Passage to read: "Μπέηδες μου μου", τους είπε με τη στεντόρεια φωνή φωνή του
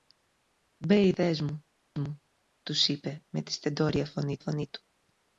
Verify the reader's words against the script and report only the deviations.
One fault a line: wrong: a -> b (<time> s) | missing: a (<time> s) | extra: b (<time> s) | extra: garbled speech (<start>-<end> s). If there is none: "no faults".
no faults